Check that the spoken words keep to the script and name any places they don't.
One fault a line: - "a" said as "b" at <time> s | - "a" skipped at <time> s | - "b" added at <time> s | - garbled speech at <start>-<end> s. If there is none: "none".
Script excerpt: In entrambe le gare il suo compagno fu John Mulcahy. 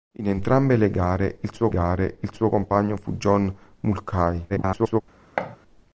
- "gare il suo" added at 1.7 s
- garbled speech at 4.5-5.0 s